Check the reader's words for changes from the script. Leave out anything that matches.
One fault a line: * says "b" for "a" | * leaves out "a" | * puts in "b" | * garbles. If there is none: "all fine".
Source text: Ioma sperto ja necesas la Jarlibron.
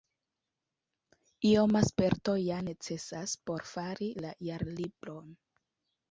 * puts in "por fari"